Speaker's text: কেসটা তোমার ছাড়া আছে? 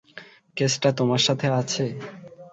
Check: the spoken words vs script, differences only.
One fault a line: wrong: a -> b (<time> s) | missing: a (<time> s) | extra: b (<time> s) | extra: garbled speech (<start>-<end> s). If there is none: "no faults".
wrong: ছাড়া -> সাথে (1.3 s)